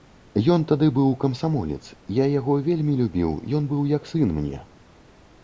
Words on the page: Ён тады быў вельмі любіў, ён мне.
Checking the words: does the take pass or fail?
fail